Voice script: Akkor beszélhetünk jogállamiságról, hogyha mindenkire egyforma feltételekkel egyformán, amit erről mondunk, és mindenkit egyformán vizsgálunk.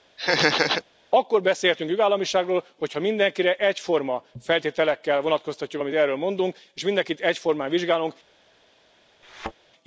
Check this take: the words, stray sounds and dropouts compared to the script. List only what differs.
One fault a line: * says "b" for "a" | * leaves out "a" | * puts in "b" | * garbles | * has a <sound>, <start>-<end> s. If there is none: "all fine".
* has a laugh, 0.2-0.8 s
* says "vonatkoztatjuk" for "egyformán"
* has a thud, 9.2-9.5 s